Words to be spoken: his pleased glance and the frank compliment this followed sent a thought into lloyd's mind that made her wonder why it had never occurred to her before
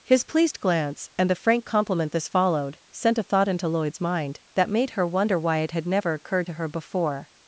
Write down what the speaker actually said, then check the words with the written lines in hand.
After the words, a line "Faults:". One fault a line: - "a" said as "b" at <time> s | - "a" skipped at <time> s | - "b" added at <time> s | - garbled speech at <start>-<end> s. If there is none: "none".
his pleased glance and the frank compliment this followed sent a thought into lloyd's mind that made her wonder why it had never occurred to her before
Faults:
none